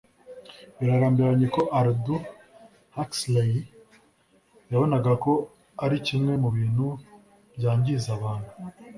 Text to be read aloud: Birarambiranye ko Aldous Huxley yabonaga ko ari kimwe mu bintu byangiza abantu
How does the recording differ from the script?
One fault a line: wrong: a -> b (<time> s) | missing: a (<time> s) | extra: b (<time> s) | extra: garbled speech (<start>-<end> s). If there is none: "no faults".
no faults